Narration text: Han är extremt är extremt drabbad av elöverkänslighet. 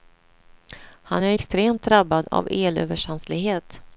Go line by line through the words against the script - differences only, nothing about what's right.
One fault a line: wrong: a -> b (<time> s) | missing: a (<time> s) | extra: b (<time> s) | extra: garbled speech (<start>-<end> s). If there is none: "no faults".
missing: är extremt (1.8 s)